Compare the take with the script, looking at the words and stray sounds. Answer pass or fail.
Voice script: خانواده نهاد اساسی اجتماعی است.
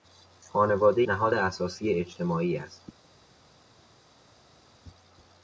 pass